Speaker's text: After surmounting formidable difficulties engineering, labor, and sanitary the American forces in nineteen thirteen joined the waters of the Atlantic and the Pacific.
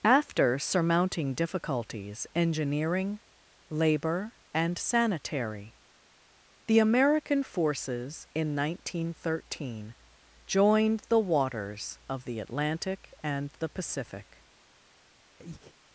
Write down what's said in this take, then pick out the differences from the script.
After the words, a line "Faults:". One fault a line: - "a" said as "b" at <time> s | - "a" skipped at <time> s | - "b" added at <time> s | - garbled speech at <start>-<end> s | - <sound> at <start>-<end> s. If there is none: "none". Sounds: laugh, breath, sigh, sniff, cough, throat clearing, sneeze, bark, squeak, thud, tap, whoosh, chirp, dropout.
After surmounting difficulties engineering, labor, and sanitary the American forces in nineteen thirteen joined the waters of the Atlantic and the Pacific.
Faults:
- "formidable" skipped at 1.4 s
- breath at 15.4-15.7 s